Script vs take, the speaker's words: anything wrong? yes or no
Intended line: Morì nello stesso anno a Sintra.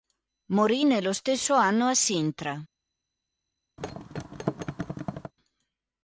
no